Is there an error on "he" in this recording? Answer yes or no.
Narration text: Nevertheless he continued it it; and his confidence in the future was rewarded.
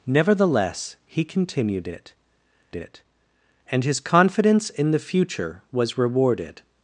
no